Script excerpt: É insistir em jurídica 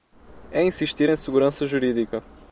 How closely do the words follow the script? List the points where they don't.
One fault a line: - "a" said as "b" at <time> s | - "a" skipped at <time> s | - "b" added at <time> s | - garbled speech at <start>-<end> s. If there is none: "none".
- "segurança" added at 1.2 s